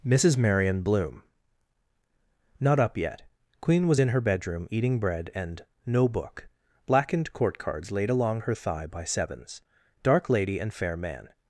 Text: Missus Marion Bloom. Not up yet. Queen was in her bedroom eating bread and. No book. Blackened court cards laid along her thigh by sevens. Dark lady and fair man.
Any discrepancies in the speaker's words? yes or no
no